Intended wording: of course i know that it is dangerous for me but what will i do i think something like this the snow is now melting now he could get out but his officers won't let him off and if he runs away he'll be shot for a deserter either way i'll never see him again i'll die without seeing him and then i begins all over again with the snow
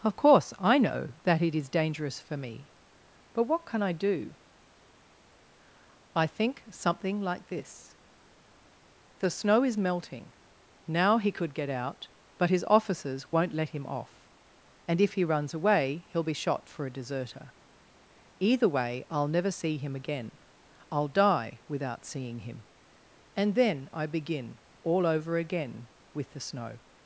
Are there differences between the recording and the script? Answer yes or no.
yes